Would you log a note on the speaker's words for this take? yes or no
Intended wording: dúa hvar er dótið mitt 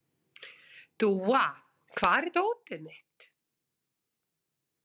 no